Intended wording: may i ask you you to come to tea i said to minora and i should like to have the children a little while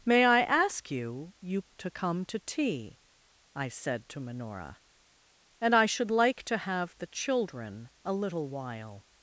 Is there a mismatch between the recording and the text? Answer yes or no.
no